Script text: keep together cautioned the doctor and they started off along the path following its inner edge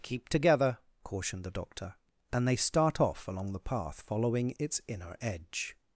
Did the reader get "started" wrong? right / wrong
wrong